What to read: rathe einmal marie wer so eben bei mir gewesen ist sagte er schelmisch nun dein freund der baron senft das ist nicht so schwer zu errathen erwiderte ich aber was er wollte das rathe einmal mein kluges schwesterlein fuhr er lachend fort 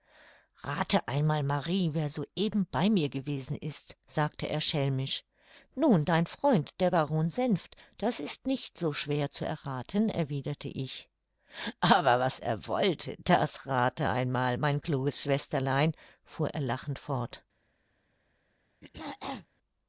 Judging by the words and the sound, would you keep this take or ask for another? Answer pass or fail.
fail